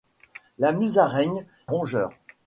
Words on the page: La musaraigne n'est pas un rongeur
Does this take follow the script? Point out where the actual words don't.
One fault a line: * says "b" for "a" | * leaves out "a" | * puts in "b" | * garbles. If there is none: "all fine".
* leaves out "n'est pas un"